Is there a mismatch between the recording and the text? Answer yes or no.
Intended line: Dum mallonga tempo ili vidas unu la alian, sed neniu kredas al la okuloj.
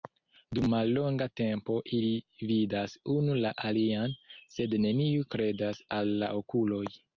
no